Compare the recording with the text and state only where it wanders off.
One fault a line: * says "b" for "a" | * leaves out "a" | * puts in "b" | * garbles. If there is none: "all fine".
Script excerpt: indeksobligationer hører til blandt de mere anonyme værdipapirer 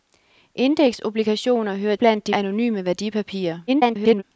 * leaves out "til"
* leaves out "mere"
* garbles